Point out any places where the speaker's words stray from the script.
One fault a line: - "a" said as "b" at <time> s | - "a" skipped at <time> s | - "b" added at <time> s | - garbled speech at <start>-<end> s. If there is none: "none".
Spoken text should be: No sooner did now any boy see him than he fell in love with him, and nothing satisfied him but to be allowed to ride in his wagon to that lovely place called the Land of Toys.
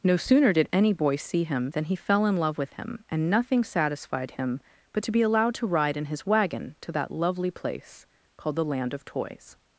- "now" skipped at 0.7 s